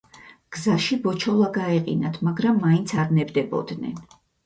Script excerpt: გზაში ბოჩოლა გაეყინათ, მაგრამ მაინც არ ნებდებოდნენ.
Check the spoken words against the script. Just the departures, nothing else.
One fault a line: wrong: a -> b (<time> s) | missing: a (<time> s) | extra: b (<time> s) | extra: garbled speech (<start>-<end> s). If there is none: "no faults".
no faults